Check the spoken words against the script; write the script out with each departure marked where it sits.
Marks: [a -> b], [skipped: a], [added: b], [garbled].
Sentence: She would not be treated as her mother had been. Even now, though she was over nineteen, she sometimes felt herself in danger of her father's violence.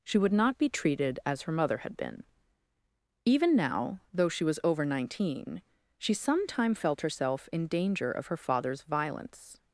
She would not be treated as her mother had been. Even now, though she was over nineteen, she [sometimes -> sometime] felt herself in danger of her father's violence.